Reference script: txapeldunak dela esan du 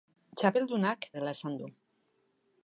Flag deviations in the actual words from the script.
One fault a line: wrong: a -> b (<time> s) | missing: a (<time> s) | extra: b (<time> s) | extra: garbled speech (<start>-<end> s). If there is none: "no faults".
no faults